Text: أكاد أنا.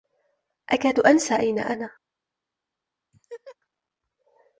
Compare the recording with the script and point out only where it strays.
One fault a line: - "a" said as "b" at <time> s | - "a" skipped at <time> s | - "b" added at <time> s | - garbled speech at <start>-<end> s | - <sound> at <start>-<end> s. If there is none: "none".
- "أنسى أين" added at 1.0 s
- laugh at 3.1-3.6 s